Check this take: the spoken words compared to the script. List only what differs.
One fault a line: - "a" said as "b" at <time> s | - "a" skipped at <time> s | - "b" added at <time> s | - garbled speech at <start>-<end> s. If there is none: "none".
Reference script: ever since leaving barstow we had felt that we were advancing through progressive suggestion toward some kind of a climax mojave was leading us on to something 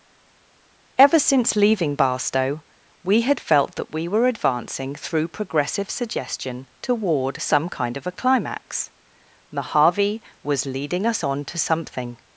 none